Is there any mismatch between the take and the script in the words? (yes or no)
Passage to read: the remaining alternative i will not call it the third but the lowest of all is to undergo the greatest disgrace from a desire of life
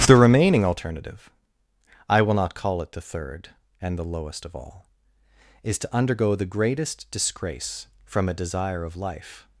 yes